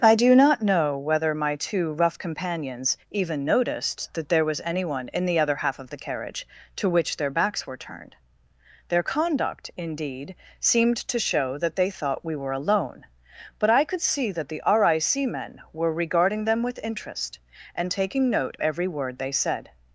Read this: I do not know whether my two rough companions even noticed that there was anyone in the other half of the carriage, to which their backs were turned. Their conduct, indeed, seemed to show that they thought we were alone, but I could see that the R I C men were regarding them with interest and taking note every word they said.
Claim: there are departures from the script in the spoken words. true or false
false